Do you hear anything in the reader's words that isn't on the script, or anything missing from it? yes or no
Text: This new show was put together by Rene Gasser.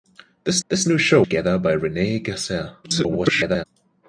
yes